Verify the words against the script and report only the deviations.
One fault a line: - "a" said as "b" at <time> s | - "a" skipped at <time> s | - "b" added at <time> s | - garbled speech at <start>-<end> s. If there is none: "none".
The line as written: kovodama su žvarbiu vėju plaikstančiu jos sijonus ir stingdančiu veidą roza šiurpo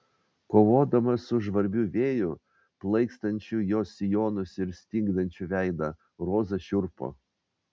none